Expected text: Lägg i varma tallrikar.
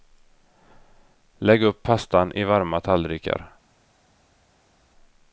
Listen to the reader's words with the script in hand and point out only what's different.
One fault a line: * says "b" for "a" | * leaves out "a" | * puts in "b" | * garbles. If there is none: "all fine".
* puts in "upp pastan"